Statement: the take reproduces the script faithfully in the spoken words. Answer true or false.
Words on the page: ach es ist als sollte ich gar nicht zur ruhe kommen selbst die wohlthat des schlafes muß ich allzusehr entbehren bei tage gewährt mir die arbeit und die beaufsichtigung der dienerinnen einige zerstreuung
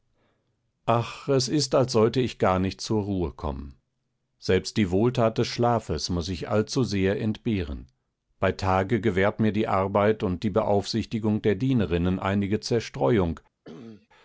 true